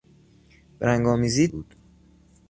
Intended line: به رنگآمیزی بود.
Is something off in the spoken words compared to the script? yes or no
no